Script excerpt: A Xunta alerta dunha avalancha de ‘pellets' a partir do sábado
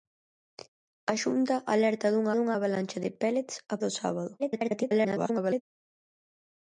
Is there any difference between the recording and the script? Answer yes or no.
yes